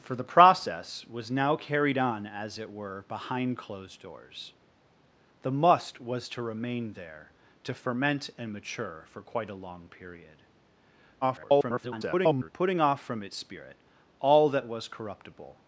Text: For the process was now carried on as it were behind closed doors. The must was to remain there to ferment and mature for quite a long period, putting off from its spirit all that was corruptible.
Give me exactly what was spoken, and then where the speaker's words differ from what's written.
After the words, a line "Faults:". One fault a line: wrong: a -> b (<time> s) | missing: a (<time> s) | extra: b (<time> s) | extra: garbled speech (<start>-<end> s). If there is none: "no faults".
For the process was now carried on as it were behind closed doors. The must was to remain there to ferment and mature for quite a long period, [garbled] putting off from its spirit all that was corruptible.
Faults:
extra: garbled speech (11.2-12.5 s)